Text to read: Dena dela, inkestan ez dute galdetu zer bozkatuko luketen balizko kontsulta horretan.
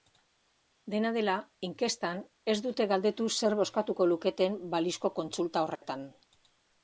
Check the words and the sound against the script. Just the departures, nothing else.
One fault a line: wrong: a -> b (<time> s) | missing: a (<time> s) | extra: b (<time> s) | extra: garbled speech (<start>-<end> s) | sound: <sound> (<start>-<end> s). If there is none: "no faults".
sound: dropout (5.8-5.8 s)